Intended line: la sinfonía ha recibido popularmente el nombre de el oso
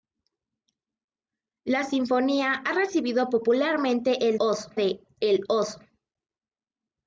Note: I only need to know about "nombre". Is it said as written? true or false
false